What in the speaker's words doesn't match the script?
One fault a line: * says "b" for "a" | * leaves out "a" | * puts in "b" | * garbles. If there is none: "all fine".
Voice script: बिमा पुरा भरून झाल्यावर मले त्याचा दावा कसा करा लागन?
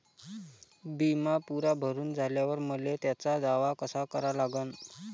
all fine